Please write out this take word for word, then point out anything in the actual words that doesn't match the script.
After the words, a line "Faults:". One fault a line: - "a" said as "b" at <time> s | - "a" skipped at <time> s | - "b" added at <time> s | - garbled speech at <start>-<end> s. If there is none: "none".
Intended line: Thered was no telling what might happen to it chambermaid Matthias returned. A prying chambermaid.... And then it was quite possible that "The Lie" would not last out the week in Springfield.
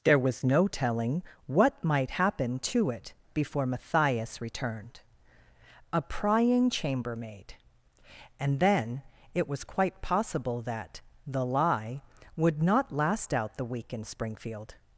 There was no telling what might happen to it before Matthias returned. A prying chambermaid.... And then it was quite possible that "The Lie" would not last out the week in Springfield.
Faults:
- "Thered" said as "There" at 0.0 s
- "chambermaid" said as "before" at 3.3 s